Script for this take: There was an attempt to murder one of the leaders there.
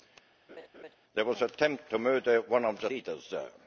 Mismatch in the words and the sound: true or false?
true